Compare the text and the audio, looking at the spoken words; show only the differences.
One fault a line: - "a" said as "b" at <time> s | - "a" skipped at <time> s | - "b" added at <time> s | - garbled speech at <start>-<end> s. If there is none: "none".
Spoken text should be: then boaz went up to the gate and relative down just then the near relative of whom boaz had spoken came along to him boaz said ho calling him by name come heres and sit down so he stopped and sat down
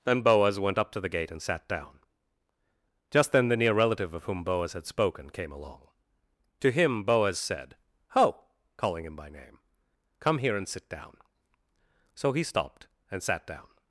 - "relative" said as "sat" at 1.4 s
- "heres" said as "here" at 10.4 s